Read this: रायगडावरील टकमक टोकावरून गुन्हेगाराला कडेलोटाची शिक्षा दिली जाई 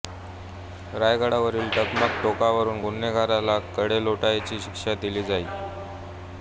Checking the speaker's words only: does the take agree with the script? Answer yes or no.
yes